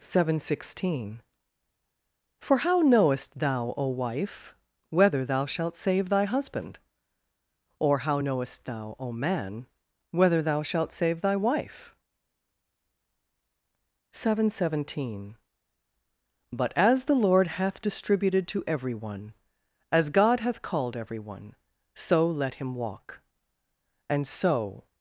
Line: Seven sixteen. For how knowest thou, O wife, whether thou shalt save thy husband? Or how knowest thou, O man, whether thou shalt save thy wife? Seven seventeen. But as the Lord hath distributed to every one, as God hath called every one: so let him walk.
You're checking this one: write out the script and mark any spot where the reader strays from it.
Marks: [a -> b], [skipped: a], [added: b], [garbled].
Seven sixteen. For how knowest thou, O wife, whether thou shalt save thy husband? Or how knowest thou, O man, whether thou shalt save thy wife? Seven seventeen. But as the Lord hath distributed to every one, as God hath called every one: so let him walk. [added: And so]